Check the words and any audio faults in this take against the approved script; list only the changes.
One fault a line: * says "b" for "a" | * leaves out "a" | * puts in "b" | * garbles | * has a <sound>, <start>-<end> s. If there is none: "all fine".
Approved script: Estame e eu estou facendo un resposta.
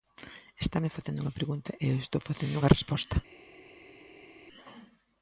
* puts in "facendo unha pregunta"
* says "unha" for "un"